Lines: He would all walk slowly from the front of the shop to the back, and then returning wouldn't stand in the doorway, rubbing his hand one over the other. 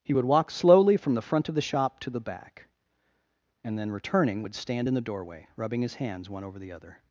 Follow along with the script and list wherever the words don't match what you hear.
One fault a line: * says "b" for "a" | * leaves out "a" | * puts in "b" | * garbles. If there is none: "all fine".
* leaves out "all"
* says "would" for "wouldn't"
* says "hands" for "hand"